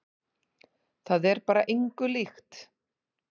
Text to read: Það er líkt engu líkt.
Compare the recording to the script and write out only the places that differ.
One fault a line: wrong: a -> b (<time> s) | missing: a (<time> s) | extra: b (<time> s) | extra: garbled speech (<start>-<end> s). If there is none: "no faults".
wrong: líkt -> bara (1.5 s)